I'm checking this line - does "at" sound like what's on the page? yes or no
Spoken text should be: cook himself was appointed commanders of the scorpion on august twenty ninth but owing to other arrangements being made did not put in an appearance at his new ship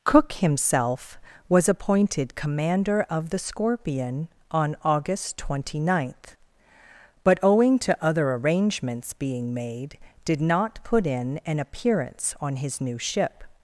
no